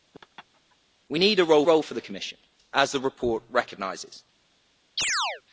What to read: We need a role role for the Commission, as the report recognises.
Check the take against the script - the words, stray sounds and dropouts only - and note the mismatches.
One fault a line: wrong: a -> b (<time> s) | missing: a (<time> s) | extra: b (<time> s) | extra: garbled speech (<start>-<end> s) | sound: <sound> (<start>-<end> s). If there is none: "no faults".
sound: laugh (0.1-0.8 s)
sound: chirp (5.0-5.4 s)